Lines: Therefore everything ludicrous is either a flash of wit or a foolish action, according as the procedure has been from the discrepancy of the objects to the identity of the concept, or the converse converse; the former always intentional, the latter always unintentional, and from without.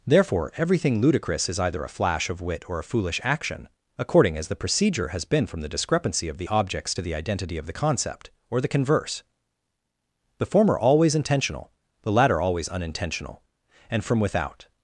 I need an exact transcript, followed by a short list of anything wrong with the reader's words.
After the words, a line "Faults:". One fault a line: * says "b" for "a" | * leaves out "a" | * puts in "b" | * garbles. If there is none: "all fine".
Therefore everything ludicrous is either a flash of wit or a foolish action, according as the procedure has been from the discrepancy of the objects to the identity of the concept, or the converse; the former always intentional, the latter always unintentional, and from without.
Faults:
* leaves out "converse"